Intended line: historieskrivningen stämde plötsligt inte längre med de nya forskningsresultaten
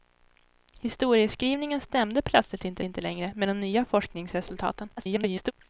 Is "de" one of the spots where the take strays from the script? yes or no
no